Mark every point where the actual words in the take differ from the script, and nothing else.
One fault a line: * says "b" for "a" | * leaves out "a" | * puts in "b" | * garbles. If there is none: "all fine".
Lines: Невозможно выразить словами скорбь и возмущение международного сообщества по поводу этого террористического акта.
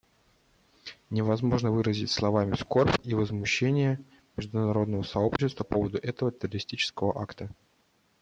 * leaves out "по"